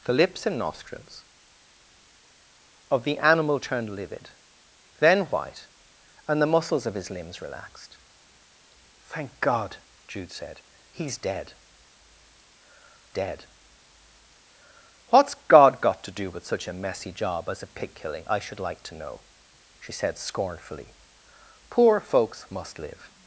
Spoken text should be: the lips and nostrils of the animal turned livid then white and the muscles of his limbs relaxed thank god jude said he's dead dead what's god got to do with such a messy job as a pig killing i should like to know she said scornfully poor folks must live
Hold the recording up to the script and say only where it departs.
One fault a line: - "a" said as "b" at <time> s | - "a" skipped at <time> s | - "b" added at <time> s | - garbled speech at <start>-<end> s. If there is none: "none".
none